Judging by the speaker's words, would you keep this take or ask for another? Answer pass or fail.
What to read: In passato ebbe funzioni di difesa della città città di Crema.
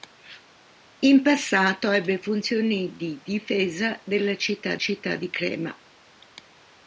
pass